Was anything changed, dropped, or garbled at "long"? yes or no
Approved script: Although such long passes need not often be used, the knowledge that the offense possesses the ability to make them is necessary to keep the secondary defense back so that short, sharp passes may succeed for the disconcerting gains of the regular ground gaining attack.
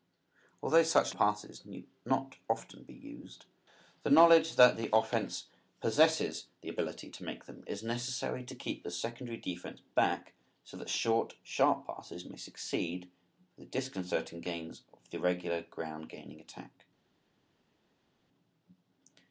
yes